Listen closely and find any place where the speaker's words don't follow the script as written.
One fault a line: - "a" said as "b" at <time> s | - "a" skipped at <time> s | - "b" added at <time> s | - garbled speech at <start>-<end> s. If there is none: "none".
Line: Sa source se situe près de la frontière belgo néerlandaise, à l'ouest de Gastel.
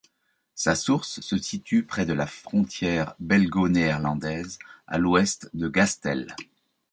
none